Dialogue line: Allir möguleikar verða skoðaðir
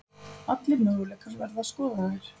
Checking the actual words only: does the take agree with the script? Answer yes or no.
yes